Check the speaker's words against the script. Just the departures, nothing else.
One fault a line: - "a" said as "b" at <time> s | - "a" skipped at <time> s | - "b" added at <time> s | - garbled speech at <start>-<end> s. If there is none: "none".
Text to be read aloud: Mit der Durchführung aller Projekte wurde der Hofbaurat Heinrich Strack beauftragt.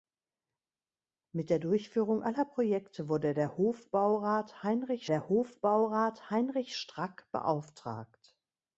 - "der Hofbaurat Heinrich" added at 5.0 s